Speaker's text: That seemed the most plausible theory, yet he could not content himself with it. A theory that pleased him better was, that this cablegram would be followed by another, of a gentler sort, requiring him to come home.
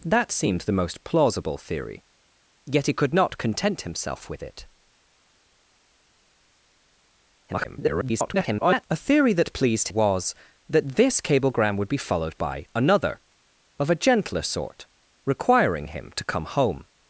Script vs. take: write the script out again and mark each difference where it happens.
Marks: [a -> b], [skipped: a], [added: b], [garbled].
That seemed the most plausible theory, yet he could not content himself with it. [garbled] A theory that pleased [skipped: him better] was, that this cablegram would be followed by another, of a gentler sort, requiring him to come home.